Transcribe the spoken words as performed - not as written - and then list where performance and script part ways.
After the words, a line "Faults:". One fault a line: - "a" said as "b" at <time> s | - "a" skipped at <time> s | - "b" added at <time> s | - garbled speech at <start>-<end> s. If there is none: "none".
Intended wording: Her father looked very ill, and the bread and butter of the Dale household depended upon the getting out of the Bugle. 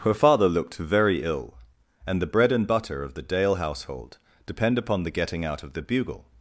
Her father looked very ill, and the bread and butter of the Dale household depend upon the getting out of the Bugle.
Faults:
- "depended" said as "depend" at 4.5 s